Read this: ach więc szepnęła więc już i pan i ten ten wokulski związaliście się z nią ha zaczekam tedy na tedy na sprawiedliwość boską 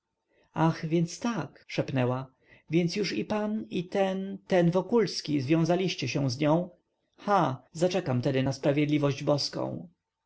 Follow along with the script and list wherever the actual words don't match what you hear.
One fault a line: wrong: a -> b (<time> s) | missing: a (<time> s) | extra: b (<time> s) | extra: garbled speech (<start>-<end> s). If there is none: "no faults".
extra: tak (1.2 s)
missing: tedy na (8.5 s)